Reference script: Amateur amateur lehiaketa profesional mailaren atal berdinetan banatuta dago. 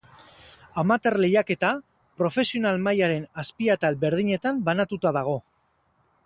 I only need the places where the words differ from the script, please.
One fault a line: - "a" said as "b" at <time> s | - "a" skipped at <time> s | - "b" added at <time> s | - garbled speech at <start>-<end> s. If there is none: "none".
- "amateur" skipped at 1.2 s
- "azpi" added at 3.5 s